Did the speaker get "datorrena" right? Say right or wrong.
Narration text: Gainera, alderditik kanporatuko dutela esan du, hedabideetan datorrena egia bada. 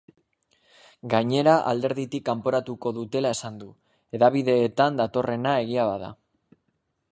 right